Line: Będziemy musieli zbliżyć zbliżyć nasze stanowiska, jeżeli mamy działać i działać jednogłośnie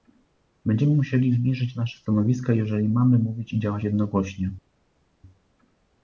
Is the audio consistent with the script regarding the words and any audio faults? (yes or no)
no